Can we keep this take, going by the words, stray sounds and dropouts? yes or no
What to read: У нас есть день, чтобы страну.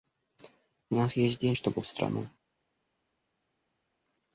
yes